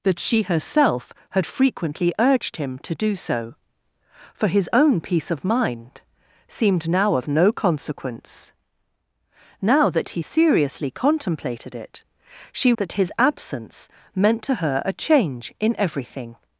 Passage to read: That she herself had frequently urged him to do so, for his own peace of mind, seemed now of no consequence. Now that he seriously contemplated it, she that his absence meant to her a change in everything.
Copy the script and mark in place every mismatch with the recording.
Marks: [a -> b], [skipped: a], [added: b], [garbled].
That she herself had frequently urged him to do so, for his own peace of mind, seemed now of no consequence. Now that he seriously contemplated it, she that his absence meant to her a change in everything.